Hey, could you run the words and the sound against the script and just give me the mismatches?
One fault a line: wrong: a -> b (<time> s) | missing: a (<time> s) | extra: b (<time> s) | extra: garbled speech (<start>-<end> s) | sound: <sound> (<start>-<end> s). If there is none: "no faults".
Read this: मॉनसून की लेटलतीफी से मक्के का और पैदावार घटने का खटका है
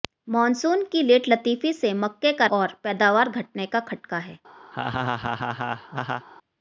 sound: laugh (4.7-6.3 s)